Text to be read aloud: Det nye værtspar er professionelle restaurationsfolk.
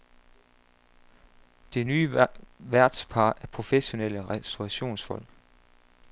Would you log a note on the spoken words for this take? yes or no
no